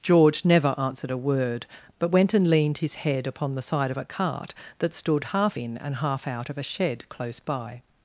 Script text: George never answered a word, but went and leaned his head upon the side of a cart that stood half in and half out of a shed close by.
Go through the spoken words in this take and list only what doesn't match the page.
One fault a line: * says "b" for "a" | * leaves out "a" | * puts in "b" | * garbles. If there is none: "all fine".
all fine